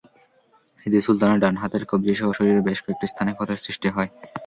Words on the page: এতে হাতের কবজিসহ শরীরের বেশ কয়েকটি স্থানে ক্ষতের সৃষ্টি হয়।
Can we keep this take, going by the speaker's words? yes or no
no